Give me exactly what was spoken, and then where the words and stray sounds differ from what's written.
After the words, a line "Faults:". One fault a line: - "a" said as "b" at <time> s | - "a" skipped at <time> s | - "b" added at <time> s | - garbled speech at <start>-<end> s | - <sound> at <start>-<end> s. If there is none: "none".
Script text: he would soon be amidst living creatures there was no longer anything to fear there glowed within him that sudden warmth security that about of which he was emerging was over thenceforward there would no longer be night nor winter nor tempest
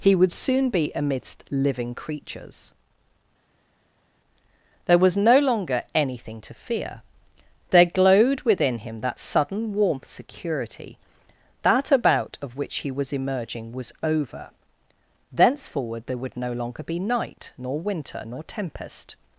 he would soon be amidst living creatures there was no longer anything to fear there glowed within him that sudden warmth security that about of which he was emerging was over thenceforward there would no longer be night nor winter nor tempest
Faults:
none